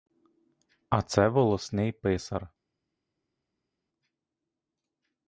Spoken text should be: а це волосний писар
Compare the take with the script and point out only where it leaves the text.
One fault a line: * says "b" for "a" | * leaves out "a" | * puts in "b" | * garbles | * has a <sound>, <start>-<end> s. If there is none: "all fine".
all fine